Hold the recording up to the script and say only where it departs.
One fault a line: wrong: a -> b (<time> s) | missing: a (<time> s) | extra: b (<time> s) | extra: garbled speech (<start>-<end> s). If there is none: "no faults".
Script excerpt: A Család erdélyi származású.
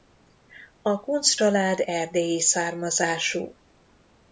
extra: Kuncz (1.0 s)